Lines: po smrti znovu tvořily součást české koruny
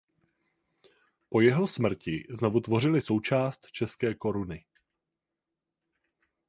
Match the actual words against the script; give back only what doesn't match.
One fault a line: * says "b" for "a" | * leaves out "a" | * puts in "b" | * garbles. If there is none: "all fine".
* puts in "jeho"